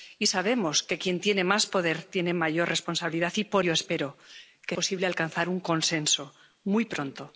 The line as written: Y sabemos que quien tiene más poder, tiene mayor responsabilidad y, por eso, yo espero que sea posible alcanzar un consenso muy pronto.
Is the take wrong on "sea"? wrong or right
wrong